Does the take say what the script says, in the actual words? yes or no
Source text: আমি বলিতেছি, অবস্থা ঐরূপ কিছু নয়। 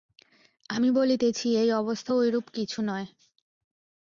no